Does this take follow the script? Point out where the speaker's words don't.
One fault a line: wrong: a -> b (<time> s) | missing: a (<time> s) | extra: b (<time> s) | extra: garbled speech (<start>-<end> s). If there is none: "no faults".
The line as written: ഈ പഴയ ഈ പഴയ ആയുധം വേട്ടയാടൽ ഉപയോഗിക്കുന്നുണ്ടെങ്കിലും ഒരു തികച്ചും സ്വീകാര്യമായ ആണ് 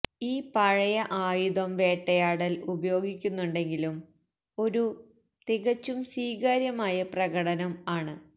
missing: ഈ പഴയ (0.9 s)
extra: പ്രകടനം (7.1 s)